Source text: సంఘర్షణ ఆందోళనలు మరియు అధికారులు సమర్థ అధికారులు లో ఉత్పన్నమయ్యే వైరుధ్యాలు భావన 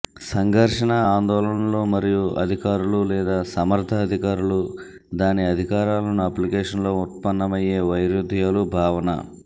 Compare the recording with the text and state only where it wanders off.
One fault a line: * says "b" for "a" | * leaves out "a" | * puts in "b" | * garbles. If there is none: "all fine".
* puts in "లేదా"
* puts in "దాని అధికారాలను అప్లికేషన్"